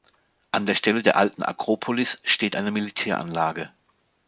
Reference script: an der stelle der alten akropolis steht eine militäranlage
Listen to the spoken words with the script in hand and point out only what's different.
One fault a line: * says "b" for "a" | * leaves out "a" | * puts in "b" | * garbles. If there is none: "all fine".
all fine